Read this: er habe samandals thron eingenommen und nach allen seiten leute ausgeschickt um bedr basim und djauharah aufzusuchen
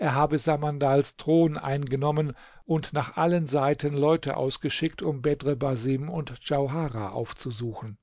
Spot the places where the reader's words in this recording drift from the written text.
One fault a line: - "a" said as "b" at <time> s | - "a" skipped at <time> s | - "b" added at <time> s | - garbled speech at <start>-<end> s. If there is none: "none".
none